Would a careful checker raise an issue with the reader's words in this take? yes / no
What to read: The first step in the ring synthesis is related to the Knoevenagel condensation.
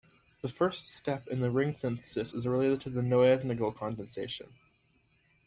no